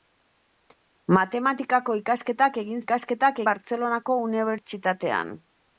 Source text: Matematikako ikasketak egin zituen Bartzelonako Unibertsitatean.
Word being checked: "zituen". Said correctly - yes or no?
no